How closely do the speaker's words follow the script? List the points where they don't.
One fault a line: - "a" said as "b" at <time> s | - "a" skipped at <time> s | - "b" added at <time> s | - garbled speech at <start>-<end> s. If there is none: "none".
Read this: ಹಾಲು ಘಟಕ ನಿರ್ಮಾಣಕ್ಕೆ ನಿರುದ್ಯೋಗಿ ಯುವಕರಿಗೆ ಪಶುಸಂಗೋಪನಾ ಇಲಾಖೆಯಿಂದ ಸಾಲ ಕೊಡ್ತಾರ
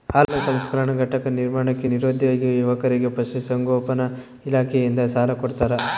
- "ಸಂಸ್ಕರಣಾ" added at 0.5 s